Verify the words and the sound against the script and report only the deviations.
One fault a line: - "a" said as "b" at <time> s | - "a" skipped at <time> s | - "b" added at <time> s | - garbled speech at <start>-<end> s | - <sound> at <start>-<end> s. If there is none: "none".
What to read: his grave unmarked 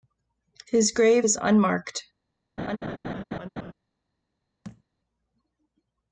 - "is" added at 1.2 s
- laugh at 2.6-3.7 s
- thud at 4.6-4.8 s